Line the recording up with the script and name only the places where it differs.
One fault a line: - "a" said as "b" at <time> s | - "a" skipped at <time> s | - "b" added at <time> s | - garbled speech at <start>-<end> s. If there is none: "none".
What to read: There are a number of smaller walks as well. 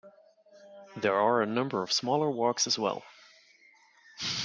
none